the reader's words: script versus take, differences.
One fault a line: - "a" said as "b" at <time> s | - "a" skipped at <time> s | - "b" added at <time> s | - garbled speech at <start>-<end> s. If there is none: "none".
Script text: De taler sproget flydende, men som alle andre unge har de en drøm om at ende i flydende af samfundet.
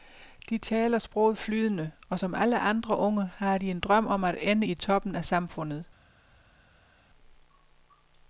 - "men" said as "og" at 2.1 s
- "flydende" said as "toppen" at 4.7 s